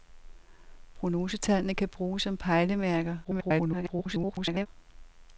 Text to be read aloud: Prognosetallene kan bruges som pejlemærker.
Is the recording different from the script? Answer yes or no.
yes